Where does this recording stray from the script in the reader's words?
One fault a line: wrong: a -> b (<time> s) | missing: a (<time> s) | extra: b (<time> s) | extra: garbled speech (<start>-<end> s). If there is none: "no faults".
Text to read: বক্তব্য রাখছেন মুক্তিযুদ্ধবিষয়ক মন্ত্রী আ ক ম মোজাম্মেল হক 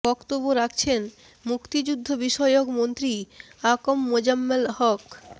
no faults